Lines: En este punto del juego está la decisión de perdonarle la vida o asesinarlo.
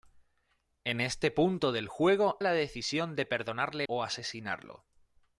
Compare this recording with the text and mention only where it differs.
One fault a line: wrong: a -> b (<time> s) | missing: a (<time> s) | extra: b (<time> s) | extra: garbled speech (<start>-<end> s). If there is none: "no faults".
missing: está (2.4 s)
missing: la vida (3.9 s)